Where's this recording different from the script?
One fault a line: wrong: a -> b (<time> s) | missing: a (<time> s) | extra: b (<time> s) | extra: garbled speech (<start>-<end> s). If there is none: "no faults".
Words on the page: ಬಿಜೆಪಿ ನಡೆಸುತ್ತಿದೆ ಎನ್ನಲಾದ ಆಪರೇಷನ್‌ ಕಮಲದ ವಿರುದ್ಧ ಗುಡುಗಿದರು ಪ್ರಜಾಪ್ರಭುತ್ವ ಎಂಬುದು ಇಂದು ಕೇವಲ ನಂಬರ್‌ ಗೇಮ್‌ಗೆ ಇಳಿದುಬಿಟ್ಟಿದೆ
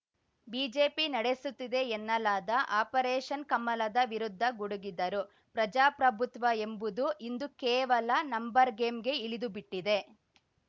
no faults